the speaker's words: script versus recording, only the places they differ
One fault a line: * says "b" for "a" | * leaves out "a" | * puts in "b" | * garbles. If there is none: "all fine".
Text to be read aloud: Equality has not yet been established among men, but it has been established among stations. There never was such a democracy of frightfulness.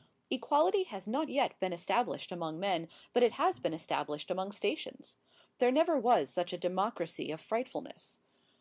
all fine